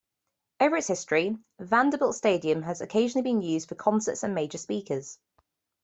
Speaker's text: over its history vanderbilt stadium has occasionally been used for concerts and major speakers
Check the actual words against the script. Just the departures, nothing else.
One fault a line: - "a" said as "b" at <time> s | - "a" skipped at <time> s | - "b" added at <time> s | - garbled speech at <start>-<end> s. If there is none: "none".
none